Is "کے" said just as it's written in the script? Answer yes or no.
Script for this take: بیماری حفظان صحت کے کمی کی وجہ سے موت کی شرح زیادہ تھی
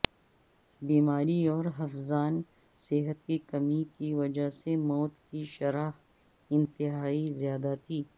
no